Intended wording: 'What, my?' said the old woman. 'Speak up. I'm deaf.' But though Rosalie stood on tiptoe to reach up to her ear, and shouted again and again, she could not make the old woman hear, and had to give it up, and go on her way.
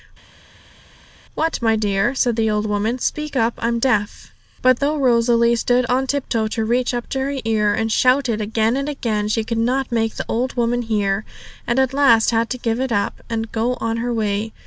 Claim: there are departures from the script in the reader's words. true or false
true